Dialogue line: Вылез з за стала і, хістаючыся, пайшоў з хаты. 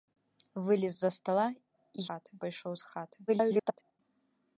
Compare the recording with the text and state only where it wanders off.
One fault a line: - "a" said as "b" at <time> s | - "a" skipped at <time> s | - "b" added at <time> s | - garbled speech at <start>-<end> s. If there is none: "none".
- "хістаючыся" said as "хаты" at 2.1 s
- garbled speech at 3.3-4.0 s